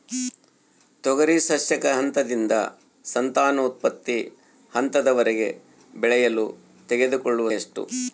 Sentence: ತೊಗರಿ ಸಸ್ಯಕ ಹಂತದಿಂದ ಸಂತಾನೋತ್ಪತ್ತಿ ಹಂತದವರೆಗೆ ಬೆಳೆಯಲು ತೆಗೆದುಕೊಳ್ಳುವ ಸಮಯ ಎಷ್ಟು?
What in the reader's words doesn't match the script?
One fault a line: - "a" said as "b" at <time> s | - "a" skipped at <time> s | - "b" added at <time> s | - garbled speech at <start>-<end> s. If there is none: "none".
- "ಸಮಯ" skipped at 7.5 s